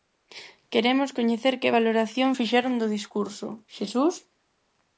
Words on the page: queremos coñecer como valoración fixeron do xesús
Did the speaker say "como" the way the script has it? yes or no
no